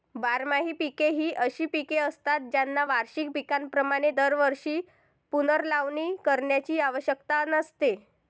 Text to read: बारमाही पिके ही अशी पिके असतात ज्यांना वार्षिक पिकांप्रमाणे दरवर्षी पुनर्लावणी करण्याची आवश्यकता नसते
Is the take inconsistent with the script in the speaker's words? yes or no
no